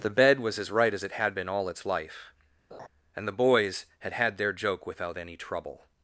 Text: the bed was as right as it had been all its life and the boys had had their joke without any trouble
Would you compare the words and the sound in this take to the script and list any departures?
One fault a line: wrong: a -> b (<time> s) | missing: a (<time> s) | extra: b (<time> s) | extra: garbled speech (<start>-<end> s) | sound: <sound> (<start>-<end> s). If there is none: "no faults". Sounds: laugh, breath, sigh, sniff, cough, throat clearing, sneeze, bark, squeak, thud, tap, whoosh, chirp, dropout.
sound: laugh (2.7-2.9 s)